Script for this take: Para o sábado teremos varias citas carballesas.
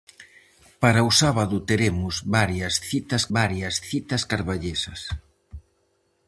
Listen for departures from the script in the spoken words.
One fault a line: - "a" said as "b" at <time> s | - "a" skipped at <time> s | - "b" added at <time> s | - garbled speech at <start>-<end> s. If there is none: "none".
- "varias citas" added at 3.4 s